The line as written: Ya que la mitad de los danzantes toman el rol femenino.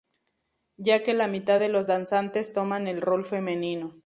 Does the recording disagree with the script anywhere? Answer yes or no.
no